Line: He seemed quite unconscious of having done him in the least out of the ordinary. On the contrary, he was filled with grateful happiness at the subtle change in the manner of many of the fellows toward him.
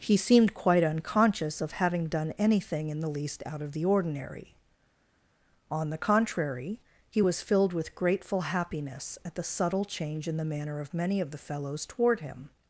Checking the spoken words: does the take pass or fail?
fail